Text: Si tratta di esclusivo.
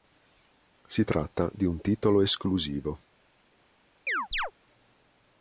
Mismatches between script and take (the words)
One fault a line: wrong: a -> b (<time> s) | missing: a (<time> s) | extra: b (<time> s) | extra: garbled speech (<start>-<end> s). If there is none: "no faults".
extra: un titolo (1.7 s)